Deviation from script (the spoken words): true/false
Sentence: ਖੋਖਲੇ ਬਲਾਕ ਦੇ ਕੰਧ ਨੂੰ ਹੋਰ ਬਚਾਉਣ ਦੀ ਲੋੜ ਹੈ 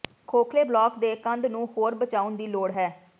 false